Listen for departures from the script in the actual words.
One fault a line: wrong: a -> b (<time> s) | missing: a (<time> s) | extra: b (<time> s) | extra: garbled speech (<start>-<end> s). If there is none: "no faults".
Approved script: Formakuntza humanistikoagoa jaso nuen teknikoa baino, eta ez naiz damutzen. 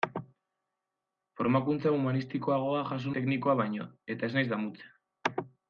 missing: nuen (3.1 s)